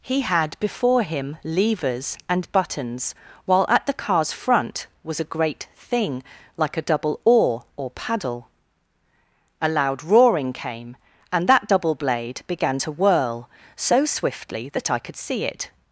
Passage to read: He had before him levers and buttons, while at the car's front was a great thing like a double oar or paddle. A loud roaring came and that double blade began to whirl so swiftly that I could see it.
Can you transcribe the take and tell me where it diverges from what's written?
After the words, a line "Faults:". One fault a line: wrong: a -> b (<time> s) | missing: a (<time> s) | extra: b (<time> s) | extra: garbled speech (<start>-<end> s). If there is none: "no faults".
He had before him levers and buttons, while at the car's front was a great thing like a double oar or paddle. A loud roaring came and that double blade began to whirl so swiftly that I could see it.
Faults:
no faults